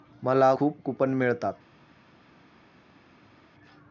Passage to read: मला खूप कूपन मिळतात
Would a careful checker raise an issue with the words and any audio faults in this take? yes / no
no